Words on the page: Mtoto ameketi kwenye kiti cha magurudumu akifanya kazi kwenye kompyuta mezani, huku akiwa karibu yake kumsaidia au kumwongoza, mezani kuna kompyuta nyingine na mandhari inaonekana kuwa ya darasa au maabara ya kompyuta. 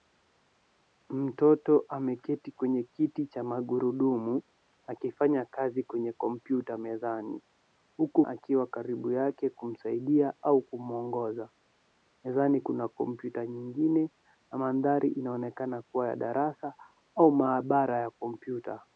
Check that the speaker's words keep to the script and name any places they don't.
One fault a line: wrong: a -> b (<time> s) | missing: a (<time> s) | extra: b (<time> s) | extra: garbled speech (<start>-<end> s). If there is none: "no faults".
no faults